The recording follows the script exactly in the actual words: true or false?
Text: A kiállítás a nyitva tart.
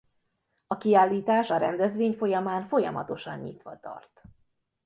false